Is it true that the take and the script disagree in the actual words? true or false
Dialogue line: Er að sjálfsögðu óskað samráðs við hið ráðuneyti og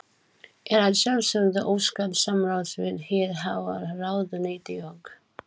true